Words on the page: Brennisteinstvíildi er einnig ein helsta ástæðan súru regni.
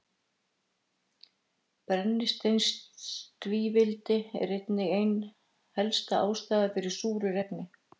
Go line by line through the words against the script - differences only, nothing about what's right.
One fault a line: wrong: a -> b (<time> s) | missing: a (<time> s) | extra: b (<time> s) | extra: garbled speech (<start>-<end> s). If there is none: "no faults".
extra: fyrir (6.8 s)